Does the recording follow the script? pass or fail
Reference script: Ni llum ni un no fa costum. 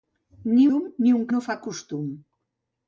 pass